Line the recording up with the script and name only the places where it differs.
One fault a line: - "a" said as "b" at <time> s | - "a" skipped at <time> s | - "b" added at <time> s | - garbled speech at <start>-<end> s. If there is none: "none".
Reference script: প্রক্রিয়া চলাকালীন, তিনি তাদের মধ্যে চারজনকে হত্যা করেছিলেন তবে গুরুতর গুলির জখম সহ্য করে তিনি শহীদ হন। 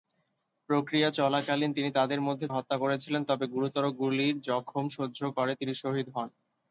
- "চারজনকে" skipped at 2.5 s